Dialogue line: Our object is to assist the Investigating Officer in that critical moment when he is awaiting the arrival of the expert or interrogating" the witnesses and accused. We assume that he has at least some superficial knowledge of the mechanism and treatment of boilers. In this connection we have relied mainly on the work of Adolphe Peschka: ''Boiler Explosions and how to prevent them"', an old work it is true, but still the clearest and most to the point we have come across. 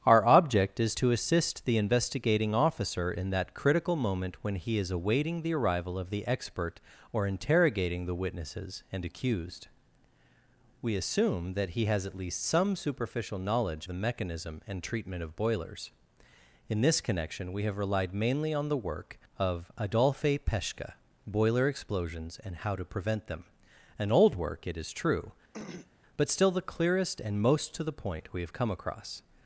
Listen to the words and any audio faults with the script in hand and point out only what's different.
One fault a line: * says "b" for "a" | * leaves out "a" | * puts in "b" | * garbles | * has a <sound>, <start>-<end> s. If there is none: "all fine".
* leaves out "of"
* has a throat clearing, 25.5-25.9 s